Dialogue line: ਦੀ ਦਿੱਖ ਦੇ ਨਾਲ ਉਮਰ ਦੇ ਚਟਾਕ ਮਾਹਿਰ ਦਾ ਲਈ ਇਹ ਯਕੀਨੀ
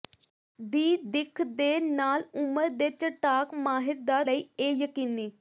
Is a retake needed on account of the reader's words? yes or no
no